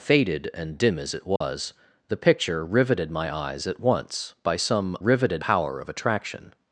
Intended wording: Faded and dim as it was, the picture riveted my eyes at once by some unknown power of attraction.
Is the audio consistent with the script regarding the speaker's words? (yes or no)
no